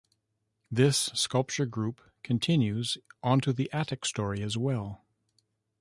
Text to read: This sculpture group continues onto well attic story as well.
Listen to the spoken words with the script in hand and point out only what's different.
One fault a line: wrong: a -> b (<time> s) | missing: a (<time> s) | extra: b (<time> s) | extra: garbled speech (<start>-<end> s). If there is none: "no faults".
wrong: well -> the (3.5 s)